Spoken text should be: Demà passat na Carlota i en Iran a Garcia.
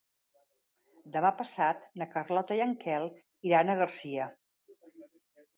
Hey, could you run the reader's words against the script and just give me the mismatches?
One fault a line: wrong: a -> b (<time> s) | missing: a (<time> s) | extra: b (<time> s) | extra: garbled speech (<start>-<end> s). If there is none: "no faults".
extra: Quel (2.9 s)